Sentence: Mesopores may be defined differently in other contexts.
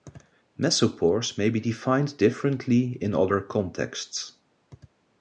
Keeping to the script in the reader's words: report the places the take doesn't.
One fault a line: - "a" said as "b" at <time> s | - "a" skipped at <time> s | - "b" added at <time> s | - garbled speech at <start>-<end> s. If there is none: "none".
none